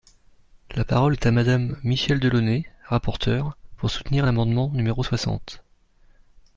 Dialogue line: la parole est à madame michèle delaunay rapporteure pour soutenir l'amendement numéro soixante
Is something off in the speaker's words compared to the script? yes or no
no